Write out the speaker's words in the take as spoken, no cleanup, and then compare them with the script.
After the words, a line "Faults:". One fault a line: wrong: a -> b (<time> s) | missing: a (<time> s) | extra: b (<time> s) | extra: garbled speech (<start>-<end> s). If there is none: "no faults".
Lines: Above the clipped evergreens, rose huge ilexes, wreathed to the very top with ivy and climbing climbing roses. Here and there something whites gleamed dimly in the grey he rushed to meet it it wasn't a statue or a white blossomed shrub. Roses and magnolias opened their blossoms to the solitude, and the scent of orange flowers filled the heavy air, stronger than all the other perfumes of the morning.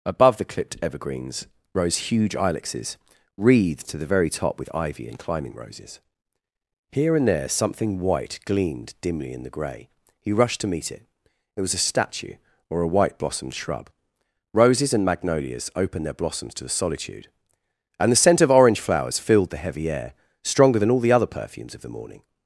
Above the clipped evergreens, rose huge ilexes, wreathed to the very top with ivy and climbing roses. Here and there something white gleamed dimly in the grey he rushed to meet it it was a statue or a white blossomed shrub. Roses and magnolias opened their blossoms to the solitude, and the scent of orange flowers filled the heavy air, stronger than all the other perfumes of the morning.
Faults:
missing: climbing (5.5 s)
wrong: whites -> white (8.0 s)
wrong: wasn't -> was (11.6 s)